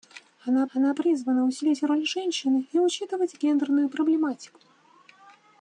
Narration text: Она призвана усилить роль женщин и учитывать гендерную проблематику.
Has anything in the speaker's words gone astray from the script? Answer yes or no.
yes